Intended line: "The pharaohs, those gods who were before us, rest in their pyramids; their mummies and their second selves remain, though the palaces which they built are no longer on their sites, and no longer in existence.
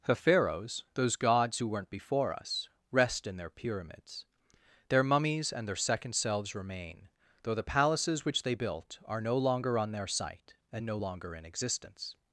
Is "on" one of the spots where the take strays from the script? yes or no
no